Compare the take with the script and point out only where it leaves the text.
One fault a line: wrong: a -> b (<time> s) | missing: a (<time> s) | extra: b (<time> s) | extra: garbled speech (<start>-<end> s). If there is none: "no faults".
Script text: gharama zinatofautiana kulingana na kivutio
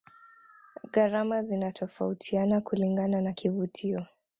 no faults